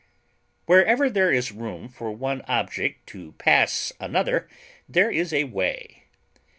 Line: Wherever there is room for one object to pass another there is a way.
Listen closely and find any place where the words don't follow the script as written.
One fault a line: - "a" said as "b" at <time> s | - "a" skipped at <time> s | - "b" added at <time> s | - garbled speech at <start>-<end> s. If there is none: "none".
none